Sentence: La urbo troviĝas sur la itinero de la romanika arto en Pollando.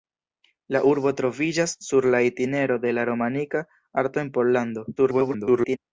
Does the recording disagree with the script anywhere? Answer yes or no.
yes